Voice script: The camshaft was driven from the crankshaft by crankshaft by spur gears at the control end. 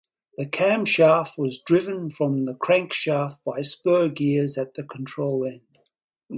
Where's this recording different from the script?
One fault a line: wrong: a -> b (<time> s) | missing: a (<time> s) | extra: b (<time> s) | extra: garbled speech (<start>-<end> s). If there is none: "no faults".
missing: crankshaft by (3.6 s)